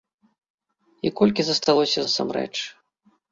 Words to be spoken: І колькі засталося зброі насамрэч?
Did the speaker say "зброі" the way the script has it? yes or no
no